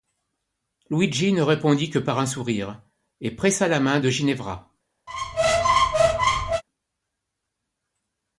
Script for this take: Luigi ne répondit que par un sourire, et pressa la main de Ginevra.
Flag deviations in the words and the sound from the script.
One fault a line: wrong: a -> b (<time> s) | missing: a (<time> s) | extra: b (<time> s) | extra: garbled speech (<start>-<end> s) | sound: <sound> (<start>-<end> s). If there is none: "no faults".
sound: squeak (5.1-6.6 s)